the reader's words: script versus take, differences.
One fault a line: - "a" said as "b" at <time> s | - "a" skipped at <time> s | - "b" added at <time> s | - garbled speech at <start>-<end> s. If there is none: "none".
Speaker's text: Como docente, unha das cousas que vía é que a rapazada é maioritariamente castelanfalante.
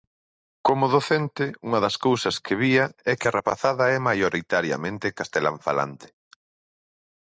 none